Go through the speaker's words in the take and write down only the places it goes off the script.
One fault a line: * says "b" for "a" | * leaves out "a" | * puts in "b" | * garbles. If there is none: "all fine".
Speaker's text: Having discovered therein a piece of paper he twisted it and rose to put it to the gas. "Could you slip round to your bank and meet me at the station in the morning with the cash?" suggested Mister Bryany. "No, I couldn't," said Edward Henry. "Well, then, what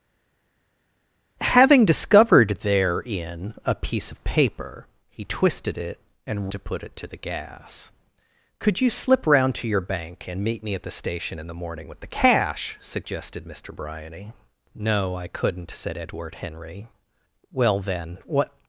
* leaves out "rose"